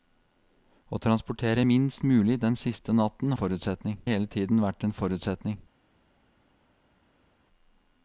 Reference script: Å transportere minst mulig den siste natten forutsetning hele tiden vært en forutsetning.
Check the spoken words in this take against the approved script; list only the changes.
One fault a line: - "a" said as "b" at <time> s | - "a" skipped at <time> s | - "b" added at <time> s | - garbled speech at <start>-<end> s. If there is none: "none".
none